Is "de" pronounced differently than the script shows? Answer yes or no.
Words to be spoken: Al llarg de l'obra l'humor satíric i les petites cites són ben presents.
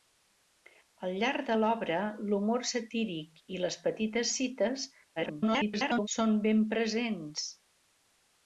no